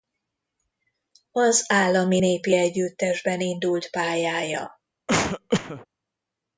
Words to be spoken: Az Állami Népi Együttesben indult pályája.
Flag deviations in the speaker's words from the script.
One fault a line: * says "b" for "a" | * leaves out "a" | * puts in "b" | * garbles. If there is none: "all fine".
all fine